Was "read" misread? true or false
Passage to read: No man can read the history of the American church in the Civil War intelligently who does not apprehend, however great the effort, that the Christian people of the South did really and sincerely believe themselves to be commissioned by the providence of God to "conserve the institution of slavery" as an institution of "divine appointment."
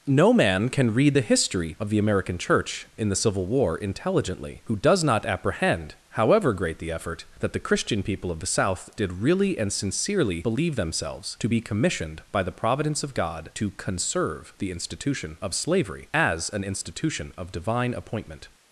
false